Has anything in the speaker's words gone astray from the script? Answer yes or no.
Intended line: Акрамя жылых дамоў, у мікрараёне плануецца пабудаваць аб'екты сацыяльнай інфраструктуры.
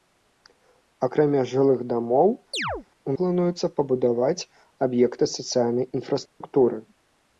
yes